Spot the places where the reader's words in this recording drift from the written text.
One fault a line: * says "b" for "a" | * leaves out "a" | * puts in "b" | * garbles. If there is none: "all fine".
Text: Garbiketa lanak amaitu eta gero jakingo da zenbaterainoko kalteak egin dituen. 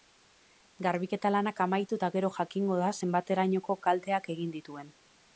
all fine